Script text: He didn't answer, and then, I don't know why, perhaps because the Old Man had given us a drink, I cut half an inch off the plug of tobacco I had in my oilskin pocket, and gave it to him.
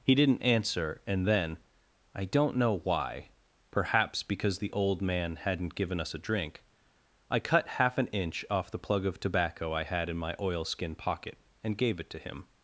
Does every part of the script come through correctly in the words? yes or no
no